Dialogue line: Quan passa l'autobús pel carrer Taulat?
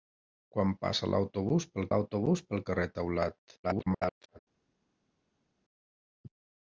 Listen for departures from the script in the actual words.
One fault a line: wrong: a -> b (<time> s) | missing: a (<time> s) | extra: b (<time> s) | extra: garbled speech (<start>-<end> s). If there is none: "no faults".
extra: l'autobús pel (1.9 s)
extra: garbled speech (3.6-4.4 s)